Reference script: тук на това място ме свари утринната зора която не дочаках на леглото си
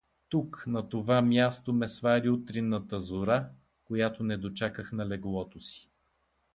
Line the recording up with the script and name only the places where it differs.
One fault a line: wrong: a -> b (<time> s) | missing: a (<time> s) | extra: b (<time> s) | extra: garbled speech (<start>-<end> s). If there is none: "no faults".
no faults